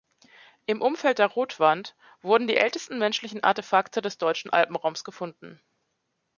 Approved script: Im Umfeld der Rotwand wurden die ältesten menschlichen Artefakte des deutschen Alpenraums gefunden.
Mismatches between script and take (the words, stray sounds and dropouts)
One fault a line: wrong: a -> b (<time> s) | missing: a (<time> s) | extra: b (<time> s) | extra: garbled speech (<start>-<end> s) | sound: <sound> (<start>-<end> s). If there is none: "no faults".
no faults